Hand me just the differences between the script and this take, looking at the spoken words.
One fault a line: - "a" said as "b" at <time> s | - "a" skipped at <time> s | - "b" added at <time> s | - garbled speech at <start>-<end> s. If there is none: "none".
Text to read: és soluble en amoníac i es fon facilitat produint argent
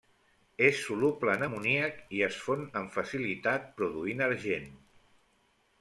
- "amb" added at 2.8 s